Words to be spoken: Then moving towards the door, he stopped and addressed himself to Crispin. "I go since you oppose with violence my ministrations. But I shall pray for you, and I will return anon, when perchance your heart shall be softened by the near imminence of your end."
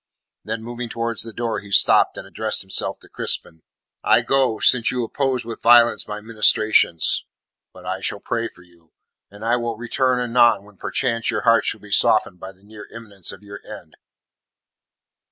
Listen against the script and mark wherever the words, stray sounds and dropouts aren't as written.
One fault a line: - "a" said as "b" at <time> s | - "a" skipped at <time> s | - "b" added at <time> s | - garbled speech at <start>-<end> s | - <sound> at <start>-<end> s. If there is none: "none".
none